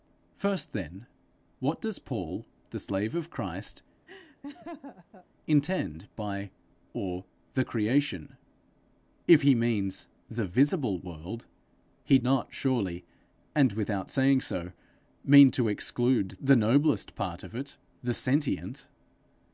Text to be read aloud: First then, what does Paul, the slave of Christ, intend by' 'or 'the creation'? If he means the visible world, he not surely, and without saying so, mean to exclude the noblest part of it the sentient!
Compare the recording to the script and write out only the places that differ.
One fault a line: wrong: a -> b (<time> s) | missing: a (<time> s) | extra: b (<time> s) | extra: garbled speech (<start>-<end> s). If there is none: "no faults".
no faults